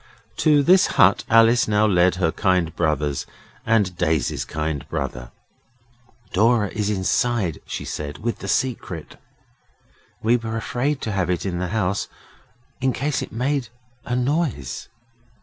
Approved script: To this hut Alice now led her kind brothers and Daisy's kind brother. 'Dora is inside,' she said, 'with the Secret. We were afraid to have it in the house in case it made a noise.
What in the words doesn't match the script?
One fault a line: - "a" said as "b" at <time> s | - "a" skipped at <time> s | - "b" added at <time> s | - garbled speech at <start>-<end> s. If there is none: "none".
none